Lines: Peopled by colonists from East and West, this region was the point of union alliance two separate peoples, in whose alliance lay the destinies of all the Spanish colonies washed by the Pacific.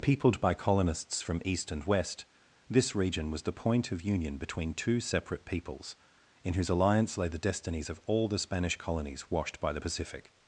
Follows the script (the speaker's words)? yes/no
no